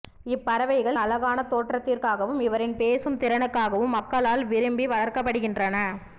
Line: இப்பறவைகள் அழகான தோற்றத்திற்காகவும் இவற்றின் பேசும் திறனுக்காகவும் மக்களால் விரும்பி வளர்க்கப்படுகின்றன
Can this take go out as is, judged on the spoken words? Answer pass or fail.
pass